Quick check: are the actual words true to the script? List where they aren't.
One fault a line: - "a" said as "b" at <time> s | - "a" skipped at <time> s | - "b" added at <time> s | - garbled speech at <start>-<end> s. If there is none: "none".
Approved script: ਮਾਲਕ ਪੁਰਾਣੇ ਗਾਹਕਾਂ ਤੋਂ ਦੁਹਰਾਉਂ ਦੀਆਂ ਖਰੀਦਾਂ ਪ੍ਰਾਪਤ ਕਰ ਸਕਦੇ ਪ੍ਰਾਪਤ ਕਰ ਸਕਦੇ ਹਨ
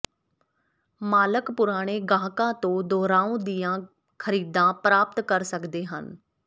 - "ਪ੍ਰਾਪਤ ਕਰ ਸਕਦੇ" skipped at 5.8 s